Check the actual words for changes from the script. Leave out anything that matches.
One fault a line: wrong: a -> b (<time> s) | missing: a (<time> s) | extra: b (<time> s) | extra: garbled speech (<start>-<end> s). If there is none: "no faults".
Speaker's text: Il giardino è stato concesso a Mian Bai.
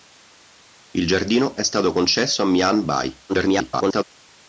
extra: garbled speech (3.3-4.0 s)